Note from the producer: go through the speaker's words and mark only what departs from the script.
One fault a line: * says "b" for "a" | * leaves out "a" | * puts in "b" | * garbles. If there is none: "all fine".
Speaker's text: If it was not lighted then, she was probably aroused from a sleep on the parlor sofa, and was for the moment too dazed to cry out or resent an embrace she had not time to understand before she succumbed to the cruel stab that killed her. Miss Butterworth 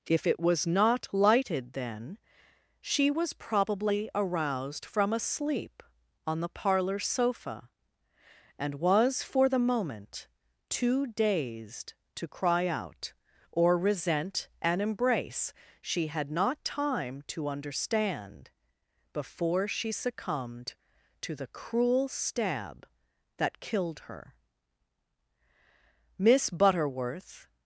all fine